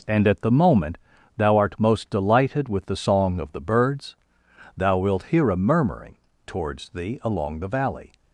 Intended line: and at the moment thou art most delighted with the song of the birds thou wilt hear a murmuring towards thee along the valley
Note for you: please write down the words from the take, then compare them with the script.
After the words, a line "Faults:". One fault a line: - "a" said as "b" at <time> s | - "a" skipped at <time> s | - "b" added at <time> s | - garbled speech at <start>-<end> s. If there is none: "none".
and at the moment thou art most delighted with the song of the birds thou wilt hear a murmuring towards thee along the valley
Faults:
none